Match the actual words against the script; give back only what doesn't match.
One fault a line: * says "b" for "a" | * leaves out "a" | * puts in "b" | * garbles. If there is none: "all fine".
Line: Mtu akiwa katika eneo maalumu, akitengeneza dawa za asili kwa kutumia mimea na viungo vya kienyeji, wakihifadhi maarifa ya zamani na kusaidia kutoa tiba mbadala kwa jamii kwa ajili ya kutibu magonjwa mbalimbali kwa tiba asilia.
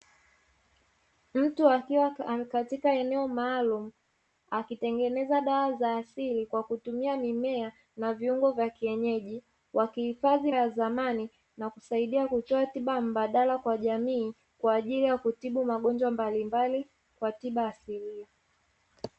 * leaves out "maarifa"